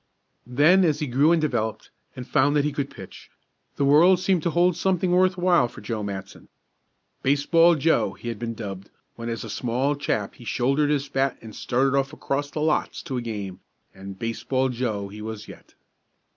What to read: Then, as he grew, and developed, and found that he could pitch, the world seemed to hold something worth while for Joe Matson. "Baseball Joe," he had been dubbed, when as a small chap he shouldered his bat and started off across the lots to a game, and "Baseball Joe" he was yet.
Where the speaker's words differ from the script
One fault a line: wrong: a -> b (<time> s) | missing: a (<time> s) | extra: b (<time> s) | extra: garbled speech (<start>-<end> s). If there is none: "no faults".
no faults